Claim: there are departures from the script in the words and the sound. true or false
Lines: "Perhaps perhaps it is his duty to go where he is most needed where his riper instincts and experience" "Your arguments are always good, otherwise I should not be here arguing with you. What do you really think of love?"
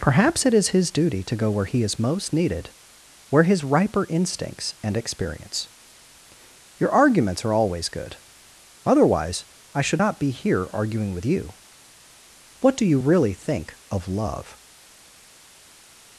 true